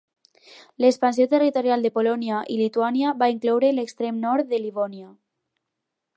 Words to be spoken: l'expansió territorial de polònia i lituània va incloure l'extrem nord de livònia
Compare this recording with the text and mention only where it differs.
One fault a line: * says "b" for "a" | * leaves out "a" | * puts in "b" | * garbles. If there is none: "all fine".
all fine